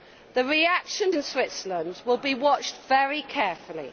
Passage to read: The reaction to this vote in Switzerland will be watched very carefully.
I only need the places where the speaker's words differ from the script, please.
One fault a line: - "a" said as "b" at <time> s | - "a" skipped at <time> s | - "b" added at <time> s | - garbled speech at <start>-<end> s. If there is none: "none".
- "to this vote" skipped at 1.1 s